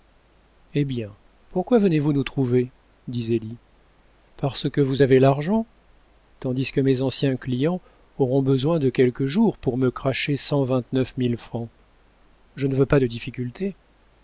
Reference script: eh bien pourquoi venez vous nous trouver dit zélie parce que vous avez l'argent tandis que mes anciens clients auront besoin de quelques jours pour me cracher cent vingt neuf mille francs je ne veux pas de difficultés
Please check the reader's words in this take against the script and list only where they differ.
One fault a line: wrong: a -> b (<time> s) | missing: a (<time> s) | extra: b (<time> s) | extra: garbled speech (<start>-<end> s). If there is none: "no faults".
no faults